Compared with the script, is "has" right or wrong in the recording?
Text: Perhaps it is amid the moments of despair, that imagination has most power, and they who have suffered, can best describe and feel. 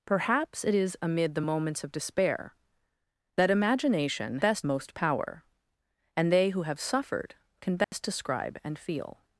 wrong